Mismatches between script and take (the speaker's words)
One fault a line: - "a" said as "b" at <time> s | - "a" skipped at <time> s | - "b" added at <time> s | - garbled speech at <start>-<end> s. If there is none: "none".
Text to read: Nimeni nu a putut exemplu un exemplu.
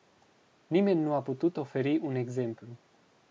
- "exemplu" said as "oferi" at 1.6 s